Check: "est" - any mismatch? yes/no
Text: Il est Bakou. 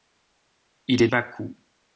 no